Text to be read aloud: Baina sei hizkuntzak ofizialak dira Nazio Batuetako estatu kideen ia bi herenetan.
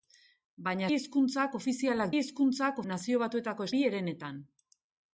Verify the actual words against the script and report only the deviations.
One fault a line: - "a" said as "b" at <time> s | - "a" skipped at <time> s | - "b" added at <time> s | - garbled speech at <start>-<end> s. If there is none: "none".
- "sei" skipped at 0.9 s
- "dira" said as "hizkuntzak" at 2.2 s
- "estatu kideen ia" skipped at 3.7 s